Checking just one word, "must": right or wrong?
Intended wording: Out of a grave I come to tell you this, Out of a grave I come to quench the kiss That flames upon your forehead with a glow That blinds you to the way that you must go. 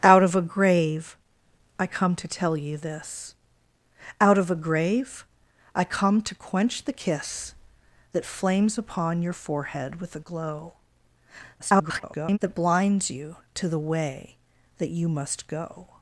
right